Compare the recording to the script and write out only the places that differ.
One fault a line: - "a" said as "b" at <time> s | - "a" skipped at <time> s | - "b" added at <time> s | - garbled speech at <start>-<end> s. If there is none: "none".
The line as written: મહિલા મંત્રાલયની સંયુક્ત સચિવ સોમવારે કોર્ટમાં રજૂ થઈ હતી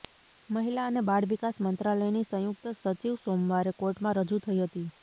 - "અને બાળ વિકાસ" added at 0.8 s